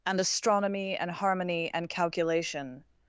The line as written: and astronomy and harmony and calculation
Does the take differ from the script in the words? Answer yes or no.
no